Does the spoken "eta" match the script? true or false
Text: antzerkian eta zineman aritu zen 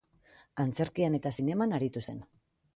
true